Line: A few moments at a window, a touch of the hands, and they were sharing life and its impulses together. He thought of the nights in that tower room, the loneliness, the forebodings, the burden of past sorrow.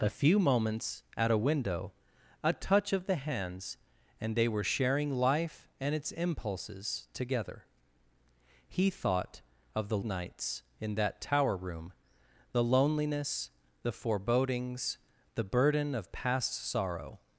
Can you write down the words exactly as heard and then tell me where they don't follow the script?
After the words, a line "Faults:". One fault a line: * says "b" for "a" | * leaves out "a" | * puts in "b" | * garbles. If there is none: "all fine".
A few moments at a window, a touch of the hands, and they were sharing life and its impulses together. He thought of the nights in that tower room, the loneliness, the forebodings, the burden of past sorrow.
Faults:
all fine